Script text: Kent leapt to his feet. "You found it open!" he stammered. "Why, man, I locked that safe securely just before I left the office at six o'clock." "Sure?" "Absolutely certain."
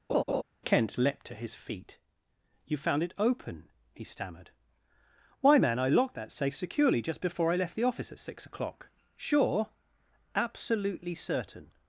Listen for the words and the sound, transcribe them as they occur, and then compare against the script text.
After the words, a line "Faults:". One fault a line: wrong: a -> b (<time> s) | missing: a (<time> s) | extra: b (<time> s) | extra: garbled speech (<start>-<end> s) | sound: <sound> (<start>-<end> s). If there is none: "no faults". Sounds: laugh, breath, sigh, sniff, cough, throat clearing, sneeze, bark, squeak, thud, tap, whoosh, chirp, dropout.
Kent leapt to his feet. "You found it open!" he stammered. "Why, man, I locked that safe securely just before I left the office at six o'clock." "Sure?" "Absolutely certain."
Faults:
sound: laugh (0.1-0.4 s)